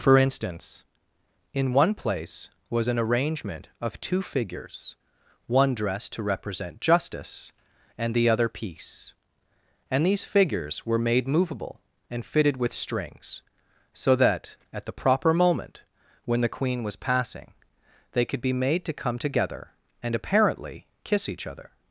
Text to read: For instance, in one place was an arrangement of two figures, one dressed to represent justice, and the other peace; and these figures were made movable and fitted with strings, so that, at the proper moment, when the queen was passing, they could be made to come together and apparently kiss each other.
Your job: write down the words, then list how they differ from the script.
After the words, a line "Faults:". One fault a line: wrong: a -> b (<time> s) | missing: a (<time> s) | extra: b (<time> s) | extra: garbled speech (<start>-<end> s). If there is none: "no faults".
For instance, in one place was an arrangement of two figures, one dressed to represent justice, and the other peace; and these figures were made movable and fitted with strings, so that, at the proper moment, when the queen was passing, they could be made to come together and apparently kiss each other.
Faults:
no faults